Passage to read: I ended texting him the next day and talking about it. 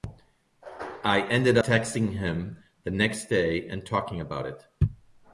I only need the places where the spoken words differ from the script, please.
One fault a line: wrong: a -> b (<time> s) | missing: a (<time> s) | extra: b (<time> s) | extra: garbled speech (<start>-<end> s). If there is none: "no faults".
no faults